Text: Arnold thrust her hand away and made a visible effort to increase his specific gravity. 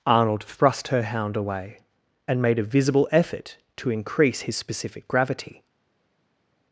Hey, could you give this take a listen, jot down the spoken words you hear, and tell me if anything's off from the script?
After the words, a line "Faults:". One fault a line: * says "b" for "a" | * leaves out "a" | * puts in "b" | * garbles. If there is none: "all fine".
Arnold thrust her hound away and made a visible effort to increase his specific gravity.
Faults:
* says "hound" for "hand"